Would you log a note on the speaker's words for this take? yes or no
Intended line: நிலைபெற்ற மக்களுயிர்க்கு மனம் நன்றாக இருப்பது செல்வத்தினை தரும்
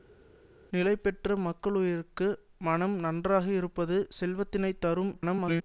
yes